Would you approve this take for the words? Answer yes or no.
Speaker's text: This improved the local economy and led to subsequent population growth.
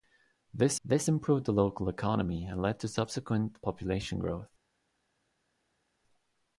no